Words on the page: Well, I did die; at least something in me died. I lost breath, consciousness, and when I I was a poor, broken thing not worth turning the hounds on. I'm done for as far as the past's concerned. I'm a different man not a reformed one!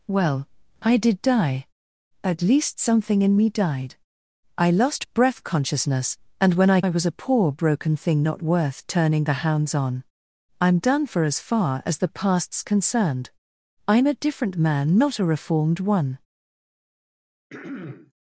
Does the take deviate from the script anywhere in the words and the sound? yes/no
yes